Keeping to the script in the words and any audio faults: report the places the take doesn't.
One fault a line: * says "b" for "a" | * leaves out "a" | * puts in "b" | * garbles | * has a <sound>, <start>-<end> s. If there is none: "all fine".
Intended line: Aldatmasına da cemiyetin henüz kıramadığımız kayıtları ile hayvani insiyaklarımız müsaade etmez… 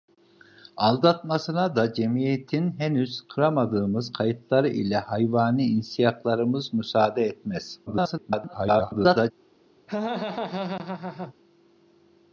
* garbles
* has a laugh, 9.9-11.3 s